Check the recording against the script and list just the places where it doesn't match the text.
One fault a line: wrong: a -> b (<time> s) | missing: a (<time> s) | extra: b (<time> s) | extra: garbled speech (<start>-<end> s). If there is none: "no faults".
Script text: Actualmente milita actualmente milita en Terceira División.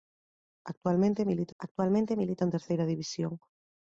no faults